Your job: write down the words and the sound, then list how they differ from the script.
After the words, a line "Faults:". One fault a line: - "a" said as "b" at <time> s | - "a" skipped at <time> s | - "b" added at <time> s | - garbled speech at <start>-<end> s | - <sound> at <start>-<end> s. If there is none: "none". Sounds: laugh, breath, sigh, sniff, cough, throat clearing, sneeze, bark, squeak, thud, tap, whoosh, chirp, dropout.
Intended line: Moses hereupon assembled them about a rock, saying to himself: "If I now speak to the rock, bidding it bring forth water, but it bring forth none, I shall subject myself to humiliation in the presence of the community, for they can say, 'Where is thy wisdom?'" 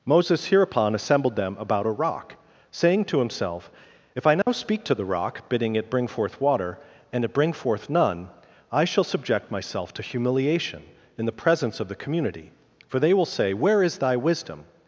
Moses hereupon assembled them about a rock, saying to himself: "If I now speak to the rock, bidding it bring forth water, and it bring forth none, I shall subject myself to humiliation in the presence of the community, for they will say, 'Where is thy wisdom?'"
Faults:
- dropout at 4.4-4.5 s
- "but" said as "and" at 7.1 s
- "can" said as "will" at 13.1 s